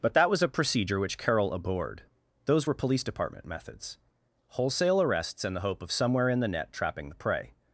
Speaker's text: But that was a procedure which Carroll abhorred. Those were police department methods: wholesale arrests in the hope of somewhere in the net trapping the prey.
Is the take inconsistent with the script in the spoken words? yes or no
no